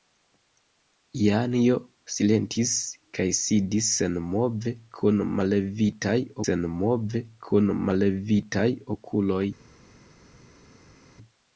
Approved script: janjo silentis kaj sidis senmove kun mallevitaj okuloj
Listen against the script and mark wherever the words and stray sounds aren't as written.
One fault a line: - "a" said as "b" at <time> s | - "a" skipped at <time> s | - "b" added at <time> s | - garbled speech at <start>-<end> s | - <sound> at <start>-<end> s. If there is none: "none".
- "senmove kun mallevitaj" added at 6.4 s